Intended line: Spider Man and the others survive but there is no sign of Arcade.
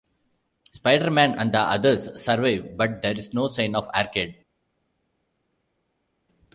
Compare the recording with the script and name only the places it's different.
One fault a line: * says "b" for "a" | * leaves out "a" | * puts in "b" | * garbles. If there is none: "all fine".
all fine